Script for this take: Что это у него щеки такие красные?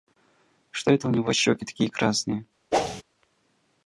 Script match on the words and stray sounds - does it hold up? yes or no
no